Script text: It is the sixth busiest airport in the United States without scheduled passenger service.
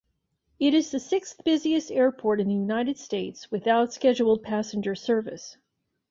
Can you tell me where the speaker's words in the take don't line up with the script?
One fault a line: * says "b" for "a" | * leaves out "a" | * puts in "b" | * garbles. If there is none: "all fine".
all fine